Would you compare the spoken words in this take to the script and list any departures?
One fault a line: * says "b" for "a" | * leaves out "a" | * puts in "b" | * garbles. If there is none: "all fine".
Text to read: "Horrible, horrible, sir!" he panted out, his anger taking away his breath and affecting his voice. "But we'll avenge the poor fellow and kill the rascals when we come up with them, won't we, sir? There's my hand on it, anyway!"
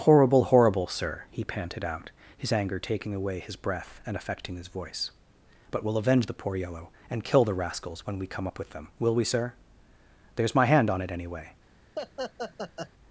* says "yellow" for "fellow"
* says "will" for "won't"